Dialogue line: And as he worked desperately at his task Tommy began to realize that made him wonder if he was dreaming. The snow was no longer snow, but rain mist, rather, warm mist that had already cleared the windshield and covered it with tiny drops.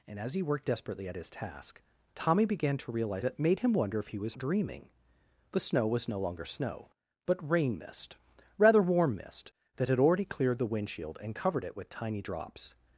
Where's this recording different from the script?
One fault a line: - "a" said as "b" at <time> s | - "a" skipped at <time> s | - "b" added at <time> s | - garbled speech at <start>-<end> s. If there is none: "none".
none